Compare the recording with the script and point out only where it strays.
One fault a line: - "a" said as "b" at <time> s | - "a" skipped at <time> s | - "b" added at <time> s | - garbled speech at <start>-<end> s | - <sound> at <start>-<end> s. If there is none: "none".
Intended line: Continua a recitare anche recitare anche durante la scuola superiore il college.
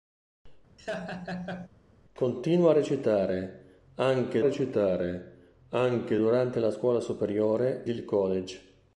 - laugh at 0.8-1.7 s